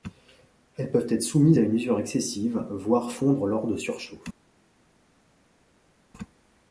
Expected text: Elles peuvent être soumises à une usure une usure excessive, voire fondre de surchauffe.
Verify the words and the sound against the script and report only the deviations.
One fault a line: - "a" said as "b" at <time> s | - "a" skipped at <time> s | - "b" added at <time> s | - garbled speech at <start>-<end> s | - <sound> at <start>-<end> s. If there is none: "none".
- "une usure" skipped at 2.0 s
- "lors" added at 3.5 s